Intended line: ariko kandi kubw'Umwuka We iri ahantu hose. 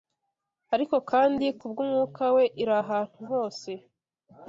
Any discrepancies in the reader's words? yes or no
no